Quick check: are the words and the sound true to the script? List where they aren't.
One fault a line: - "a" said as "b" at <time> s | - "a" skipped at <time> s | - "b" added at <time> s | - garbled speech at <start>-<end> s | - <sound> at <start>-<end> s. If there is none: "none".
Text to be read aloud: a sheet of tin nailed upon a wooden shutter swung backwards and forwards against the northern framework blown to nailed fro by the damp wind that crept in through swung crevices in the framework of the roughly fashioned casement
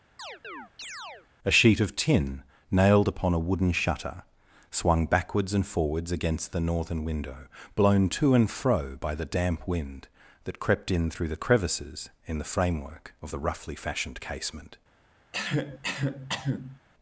- chirp at 0.2-1.3 s
- "framework" said as "window" at 7.0 s
- "nailed" said as "and" at 8.4 s
- "swung" said as "the" at 11.3 s
- cough at 15.3-16.8 s